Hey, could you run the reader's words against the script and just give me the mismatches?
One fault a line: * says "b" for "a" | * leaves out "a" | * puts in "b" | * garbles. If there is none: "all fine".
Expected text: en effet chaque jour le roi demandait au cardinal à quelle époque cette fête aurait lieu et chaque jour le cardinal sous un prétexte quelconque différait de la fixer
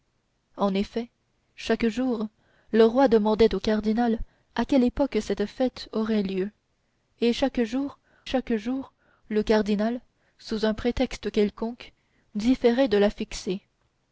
* puts in "chaque jour"